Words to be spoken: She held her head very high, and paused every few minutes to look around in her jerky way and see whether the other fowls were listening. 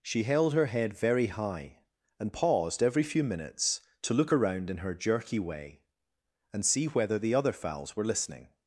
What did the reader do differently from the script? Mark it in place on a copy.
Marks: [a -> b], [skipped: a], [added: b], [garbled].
She held her head very high, and paused every few minutes to look around in her jerky way and see whether the other fowls were listening.